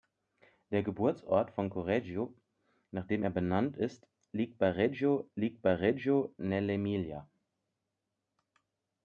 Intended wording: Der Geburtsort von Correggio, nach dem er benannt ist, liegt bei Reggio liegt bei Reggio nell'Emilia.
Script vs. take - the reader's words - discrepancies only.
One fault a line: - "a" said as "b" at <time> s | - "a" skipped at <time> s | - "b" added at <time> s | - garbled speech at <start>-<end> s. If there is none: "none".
none